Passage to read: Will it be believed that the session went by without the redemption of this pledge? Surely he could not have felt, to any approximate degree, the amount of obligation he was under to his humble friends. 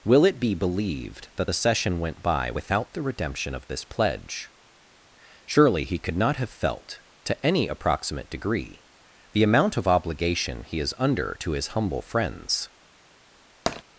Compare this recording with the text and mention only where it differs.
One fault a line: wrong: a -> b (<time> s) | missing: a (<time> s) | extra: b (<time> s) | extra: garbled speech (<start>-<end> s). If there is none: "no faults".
wrong: was -> is (10.8 s)